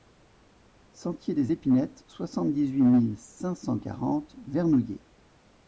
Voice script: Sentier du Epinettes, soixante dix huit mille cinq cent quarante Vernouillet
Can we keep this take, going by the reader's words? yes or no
no